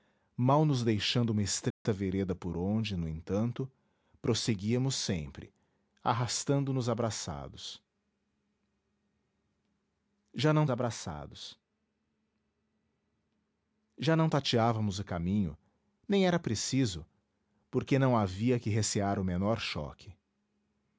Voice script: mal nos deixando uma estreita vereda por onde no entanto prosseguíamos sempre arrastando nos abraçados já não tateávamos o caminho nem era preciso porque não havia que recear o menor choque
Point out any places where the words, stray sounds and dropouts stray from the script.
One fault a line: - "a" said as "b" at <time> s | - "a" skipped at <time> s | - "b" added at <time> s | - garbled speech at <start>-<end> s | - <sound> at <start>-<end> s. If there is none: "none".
- dropout at 1.7-1.9 s
- "abraçados já não" added at 10.7 s